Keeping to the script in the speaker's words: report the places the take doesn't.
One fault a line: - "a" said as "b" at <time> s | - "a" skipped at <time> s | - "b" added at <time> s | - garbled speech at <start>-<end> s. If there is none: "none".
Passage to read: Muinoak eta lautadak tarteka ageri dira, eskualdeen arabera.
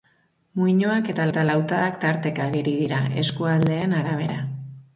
- "eta" added at 1.3 s